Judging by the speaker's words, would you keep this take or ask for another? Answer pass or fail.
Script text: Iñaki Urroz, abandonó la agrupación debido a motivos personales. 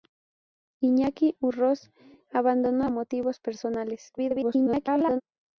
fail